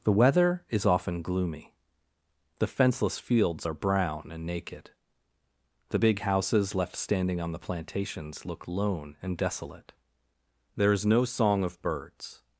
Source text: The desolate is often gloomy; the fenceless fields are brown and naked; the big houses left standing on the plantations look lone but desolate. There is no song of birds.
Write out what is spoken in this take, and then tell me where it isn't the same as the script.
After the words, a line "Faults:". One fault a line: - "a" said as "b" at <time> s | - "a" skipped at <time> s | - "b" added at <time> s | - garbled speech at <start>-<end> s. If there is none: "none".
The weather is often gloomy; the fenceless fields are brown and naked; the big houses left standing on the plantations look lone and desolate. There is no song of birds.
Faults:
- "desolate" said as "weather" at 0.1 s
- "but" said as "and" at 9.2 s